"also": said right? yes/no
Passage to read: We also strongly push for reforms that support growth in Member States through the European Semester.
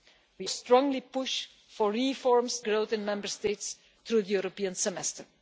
no